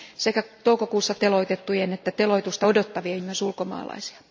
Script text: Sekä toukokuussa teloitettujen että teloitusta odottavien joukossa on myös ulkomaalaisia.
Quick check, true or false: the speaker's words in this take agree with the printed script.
false